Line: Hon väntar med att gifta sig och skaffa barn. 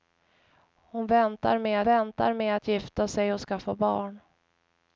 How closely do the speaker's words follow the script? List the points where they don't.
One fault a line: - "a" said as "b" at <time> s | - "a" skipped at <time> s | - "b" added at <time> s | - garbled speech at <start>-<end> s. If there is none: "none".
- "väntar med" added at 1.8 s